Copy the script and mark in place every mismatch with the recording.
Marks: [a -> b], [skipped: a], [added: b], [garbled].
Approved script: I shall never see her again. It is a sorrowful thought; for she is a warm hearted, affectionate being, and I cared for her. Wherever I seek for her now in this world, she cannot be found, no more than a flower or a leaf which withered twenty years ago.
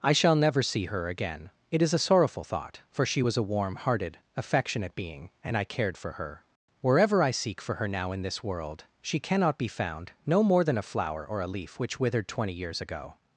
I shall never see her again. It is a sorrowful thought; for she [is -> was] a warm hearted, affectionate being, and I cared for her. Wherever I seek for her now in this world, she cannot be found, no more than a flower or a leaf which withered twenty years ago.